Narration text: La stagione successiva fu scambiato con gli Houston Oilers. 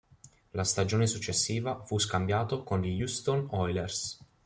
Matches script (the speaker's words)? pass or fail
pass